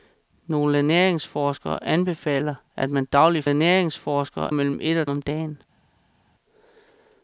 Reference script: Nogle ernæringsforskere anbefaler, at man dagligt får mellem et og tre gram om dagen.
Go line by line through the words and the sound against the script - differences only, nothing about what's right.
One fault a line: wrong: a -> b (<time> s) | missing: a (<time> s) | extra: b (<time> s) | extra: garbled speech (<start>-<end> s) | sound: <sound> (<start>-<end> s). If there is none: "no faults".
wrong: får -> ernæringsforskere (3.5 s)
missing: tre gram (5.1 s)